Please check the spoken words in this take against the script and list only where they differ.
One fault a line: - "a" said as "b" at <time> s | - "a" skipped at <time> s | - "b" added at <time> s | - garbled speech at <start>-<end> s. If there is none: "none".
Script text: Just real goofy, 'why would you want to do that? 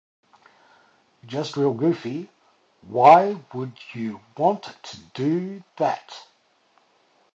none